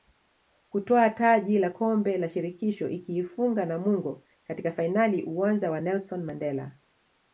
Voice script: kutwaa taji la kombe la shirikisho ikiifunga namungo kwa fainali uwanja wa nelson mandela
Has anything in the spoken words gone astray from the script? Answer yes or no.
yes